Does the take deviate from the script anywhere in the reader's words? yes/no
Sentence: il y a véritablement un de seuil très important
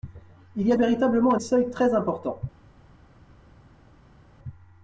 no